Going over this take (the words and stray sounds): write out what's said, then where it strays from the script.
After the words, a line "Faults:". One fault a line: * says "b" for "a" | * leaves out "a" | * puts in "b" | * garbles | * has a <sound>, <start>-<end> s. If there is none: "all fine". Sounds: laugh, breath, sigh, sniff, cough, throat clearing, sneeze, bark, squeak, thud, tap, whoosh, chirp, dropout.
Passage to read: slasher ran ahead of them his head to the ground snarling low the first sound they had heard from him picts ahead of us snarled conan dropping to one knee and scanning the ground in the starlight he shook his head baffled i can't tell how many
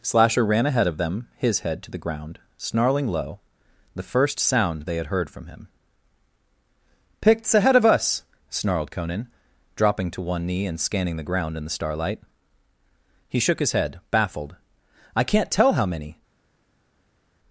slasher ran ahead of them his head to the ground snarling low the first sound they had heard from him picts ahead of us snarled conan dropping to one knee and scanning the ground in the starlight he shook his head baffled i can't tell how many
Faults:
all fine